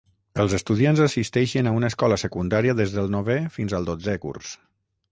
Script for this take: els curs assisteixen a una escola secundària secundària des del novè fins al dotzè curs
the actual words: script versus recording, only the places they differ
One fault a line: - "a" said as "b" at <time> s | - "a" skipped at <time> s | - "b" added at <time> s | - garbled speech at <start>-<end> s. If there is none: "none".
- "curs" said as "estudiants" at 0.6 s
- "secundària" skipped at 2.8 s